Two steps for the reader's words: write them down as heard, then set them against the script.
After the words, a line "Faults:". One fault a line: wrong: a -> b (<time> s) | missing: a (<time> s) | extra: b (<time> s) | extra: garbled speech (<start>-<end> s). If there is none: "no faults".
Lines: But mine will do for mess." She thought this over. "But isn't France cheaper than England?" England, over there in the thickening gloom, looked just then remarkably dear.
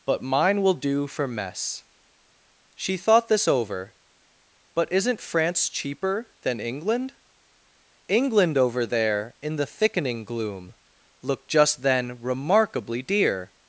But mine will do for mess." She thought this over. "But isn't France cheaper than England?" England, over there in the thickening gloom, looked just then remarkably dear.
Faults:
no faults